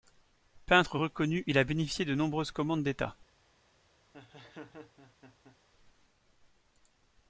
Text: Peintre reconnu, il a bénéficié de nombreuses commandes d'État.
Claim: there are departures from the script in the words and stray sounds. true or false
true